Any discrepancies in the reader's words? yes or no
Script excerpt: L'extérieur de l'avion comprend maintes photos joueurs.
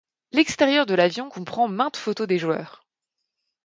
yes